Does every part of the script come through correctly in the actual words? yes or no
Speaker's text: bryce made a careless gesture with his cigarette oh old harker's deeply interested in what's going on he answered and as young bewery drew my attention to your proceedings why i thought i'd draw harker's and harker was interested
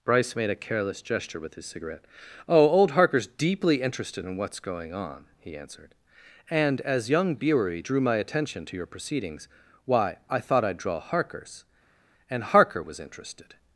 yes